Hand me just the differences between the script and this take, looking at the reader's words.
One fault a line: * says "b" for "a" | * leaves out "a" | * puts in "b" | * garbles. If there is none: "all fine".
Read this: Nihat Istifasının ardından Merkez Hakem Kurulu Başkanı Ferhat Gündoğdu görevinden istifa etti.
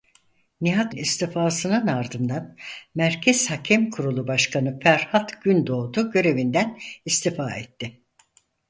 all fine